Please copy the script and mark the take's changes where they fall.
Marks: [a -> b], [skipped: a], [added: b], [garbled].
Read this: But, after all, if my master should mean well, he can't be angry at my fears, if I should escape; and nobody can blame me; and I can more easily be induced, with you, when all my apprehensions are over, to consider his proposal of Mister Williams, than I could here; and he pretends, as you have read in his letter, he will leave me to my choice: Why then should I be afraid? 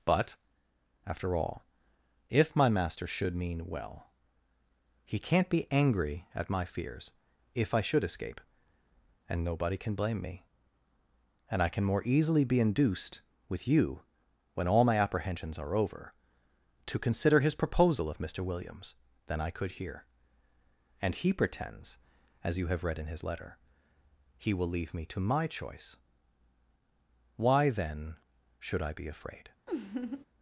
But, after all, if my master should mean well, he can't be angry at my fears, if I should escape; and nobody can blame me; and I can more easily be induced, with you, when all my apprehensions are over, to consider his proposal of Mister Williams, than I could here; and he pretends, as you have read in his letter, he will leave me to my choice: Why then should I be afraid?